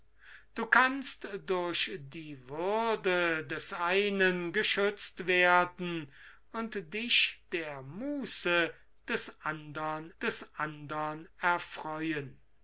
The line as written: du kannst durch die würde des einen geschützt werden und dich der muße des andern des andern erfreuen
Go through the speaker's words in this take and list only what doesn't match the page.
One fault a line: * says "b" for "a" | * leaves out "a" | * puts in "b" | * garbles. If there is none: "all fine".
all fine